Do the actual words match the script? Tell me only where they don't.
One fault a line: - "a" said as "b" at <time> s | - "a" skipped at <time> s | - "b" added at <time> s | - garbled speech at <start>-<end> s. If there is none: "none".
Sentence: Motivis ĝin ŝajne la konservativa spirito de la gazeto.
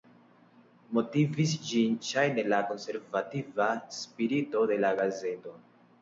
none